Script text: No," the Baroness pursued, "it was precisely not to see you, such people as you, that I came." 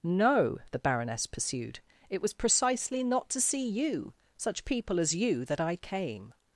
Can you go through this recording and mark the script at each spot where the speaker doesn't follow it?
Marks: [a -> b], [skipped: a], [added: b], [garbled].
No," the Baroness pursued, "it was precisely not to see you, such people as you, that I came."